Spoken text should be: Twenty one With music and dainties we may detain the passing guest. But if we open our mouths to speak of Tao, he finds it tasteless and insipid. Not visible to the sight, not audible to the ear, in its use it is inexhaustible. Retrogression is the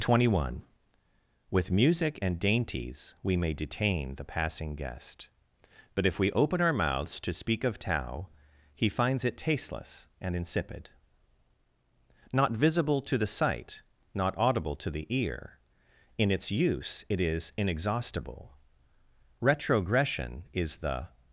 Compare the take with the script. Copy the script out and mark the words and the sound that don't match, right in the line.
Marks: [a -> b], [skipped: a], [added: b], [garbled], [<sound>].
Twenty one With music and dainties we may detain the passing guest. But if we open our mouths to speak of Tao, he finds it tasteless and insipid. Not visible to the sight, not audible to the ear, in its use it is inexhaustible. Retrogression is the